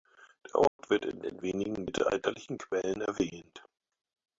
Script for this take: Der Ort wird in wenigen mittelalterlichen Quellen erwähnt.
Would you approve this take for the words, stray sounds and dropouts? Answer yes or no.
no